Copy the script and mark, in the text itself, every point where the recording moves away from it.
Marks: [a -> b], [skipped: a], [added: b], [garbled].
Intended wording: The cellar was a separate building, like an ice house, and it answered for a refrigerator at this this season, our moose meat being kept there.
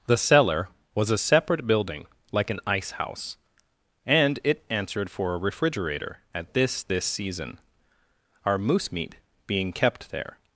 The cellar was a separate building, like an ice house, and it answered for a refrigerator at this this season, our moose meat being kept there.